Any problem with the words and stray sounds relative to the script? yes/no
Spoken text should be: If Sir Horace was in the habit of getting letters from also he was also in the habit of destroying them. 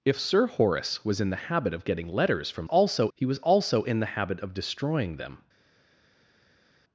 no